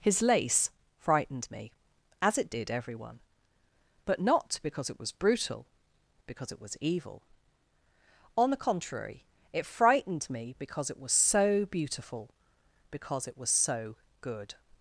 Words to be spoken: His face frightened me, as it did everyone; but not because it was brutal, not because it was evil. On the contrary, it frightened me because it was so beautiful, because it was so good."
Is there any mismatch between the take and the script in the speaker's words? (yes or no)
yes